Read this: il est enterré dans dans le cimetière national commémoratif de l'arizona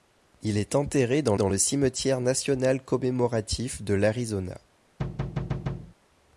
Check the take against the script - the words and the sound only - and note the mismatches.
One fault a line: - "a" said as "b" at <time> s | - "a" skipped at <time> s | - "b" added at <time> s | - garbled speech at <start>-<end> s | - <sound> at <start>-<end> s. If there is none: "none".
- thud at 5.0-5.9 s